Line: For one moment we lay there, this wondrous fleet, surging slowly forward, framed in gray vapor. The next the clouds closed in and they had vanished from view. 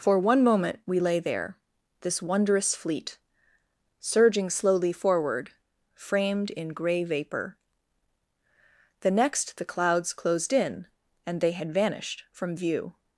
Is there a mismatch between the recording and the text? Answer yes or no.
no